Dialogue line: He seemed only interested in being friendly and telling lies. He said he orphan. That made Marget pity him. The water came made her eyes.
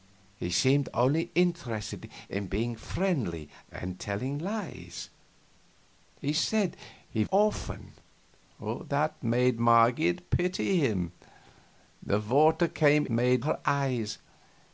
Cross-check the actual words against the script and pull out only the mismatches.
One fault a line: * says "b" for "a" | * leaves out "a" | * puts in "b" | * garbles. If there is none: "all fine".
all fine